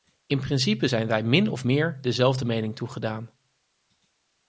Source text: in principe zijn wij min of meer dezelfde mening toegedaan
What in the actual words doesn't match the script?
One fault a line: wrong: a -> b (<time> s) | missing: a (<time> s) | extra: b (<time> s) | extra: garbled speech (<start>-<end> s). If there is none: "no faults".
no faults